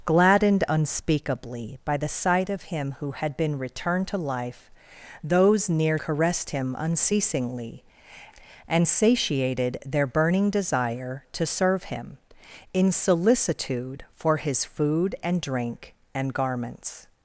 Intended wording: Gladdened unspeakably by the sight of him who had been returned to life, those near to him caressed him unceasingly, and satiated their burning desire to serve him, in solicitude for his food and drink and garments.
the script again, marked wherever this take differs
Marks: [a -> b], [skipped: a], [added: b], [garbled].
Gladdened unspeakably by the sight of him who had been returned to life, those near [skipped: to him] caressed him unceasingly, and satiated their burning desire to serve him, in solicitude for his food and drink and garments.